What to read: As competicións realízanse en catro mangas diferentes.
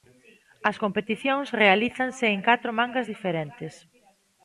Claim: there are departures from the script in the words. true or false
false